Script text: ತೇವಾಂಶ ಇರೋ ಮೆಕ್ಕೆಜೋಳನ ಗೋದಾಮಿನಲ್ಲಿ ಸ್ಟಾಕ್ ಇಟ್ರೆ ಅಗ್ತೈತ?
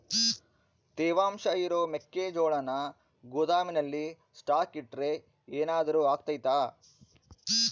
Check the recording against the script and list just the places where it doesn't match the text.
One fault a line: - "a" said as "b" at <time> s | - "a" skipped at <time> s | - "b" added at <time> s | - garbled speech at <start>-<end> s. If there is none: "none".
- "ಏನಾದರೂ" added at 5.5 s